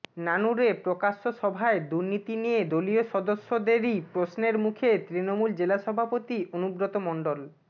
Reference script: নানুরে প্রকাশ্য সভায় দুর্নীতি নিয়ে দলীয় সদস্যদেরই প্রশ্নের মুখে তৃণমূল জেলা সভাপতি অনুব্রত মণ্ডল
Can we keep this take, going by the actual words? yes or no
yes